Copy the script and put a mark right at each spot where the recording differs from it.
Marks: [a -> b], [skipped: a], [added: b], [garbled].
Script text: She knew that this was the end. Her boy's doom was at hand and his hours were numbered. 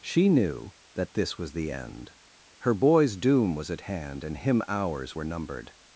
She knew that this was the end. Her boy's doom was at hand and [his -> him] hours were numbered.